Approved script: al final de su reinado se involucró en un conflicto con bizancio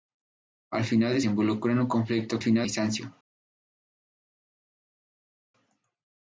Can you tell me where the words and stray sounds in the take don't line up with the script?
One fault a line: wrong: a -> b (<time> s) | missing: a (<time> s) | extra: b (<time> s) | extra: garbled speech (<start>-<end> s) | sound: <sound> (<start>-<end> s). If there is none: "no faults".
missing: su reinado se (1.2 s)
wrong: con -> final (2.4 s)